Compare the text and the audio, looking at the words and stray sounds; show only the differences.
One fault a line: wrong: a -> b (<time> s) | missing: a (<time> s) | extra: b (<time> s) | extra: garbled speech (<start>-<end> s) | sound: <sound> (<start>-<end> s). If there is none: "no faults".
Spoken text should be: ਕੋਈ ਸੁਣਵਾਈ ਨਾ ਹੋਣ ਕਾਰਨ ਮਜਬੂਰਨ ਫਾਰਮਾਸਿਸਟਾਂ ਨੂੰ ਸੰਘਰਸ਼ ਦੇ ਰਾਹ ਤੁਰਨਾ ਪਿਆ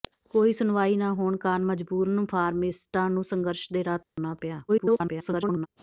sound: dropout (4.0-4.2 s)
extra: garbled speech (4.7-5.7 s)